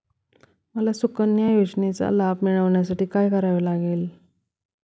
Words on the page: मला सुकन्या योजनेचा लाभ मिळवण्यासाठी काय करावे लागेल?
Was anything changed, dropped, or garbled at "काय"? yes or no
no